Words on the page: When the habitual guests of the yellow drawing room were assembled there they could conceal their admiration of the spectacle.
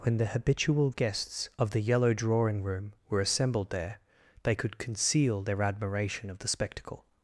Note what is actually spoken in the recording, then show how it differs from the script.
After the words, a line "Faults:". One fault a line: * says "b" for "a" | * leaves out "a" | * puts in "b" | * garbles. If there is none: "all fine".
When the habitual guests of the yellow drawing room were assembled there they could conceal their admiration of the spectacle.
Faults:
all fine